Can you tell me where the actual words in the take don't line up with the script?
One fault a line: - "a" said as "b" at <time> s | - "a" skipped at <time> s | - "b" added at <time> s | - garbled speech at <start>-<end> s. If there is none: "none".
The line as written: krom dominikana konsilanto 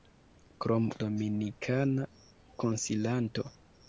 none